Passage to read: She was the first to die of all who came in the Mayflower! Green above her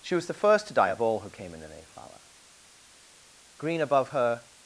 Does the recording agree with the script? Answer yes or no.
yes